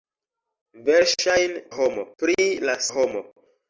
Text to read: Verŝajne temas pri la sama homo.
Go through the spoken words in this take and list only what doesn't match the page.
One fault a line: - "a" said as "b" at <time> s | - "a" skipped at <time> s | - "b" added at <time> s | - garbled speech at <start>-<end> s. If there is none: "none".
- "temas" said as "homo" at 1.8 s
- "sama" skipped at 2.8 s